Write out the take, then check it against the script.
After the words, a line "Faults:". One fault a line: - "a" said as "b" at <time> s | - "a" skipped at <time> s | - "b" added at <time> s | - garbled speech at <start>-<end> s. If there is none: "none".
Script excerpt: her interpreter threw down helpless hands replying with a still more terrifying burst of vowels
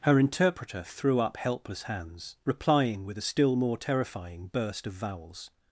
her interpreter threw up helpless hands replying with a still more terrifying burst of vowels
Faults:
- "down" said as "up" at 1.2 s